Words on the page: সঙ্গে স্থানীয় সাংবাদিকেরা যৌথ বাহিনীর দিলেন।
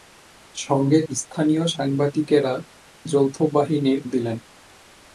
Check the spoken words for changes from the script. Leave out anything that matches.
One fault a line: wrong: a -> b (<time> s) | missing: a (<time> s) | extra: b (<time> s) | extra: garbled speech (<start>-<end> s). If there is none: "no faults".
no faults